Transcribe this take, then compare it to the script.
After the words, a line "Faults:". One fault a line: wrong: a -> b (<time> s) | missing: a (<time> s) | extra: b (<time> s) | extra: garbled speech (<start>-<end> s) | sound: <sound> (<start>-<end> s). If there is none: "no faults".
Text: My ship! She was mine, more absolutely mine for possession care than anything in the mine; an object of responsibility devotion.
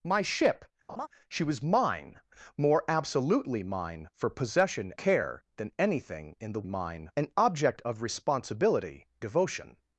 My ship! She was mine, more absolutely mine for possession care than anything in the mine; an object of responsibility devotion.
Faults:
sound: laugh (0.9-1.1 s)